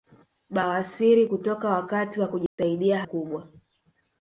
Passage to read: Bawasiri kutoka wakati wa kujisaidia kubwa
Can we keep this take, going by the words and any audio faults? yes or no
no